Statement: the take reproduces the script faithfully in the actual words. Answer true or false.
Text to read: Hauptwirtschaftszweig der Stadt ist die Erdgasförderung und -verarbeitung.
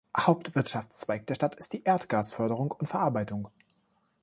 true